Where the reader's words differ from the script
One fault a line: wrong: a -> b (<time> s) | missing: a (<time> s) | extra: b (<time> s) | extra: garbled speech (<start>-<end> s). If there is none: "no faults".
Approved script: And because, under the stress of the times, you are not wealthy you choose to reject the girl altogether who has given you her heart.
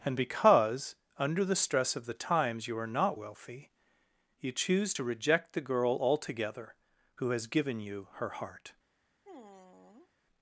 no faults